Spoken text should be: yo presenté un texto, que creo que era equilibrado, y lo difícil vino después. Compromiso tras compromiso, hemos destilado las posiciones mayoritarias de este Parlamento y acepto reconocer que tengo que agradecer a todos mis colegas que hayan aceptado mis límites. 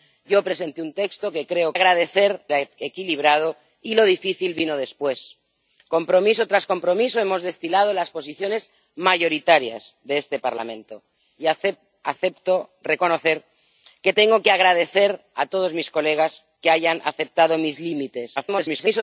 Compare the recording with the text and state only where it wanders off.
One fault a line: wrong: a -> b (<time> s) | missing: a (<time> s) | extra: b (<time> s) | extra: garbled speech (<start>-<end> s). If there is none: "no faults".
wrong: que -> agradecer (1.7 s)
extra: garbled speech (18.4-19.0 s)